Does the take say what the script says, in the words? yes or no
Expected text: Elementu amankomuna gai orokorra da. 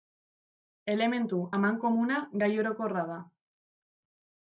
yes